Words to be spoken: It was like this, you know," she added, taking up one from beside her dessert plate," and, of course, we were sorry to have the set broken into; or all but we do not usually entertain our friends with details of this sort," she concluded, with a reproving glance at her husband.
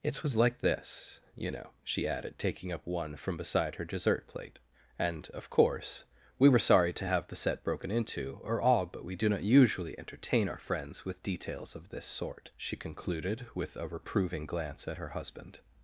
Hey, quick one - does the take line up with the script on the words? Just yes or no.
yes